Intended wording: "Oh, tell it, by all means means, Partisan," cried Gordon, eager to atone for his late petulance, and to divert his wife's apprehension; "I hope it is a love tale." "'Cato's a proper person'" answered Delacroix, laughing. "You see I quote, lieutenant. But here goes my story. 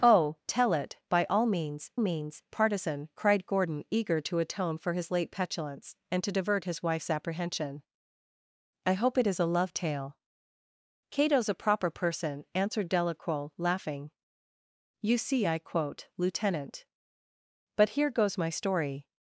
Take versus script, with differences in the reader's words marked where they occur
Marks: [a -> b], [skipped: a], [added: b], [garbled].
"Oh, tell it, by all means means, Partisan," cried Gordon, eager to atone for his late petulance, and to divert his wife's apprehension; "I hope it is a love tale." "'Cato's a proper person'" answered Delacroix, laughing. "You see I quote, lieutenant. But here goes my story.